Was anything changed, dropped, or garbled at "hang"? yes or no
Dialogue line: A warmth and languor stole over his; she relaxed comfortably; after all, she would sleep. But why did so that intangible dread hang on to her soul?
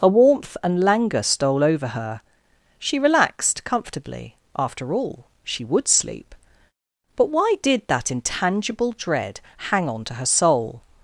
no